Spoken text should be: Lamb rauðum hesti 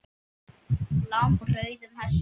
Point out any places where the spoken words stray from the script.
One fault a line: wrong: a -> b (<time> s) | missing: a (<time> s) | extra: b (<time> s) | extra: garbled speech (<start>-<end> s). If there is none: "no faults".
no faults